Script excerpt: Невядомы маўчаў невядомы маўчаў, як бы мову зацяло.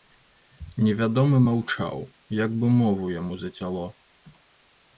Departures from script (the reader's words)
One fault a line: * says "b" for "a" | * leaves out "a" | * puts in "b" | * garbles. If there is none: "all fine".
* leaves out "невядомы маўчаў"
* puts in "яму"